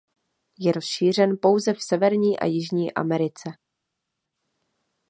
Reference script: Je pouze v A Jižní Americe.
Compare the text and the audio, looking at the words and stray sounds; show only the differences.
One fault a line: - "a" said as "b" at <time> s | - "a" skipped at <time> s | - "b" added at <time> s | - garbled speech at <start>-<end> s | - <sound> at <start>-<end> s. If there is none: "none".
- "rozšířen" added at 0.7 s
- "Severní" added at 1.8 s